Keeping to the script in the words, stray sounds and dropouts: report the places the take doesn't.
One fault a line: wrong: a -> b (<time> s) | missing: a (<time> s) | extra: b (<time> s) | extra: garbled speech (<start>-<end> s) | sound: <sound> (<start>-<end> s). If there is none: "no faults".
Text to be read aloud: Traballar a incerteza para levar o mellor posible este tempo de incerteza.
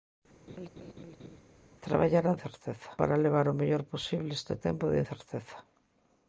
sound: laugh (0.5-1.4 s)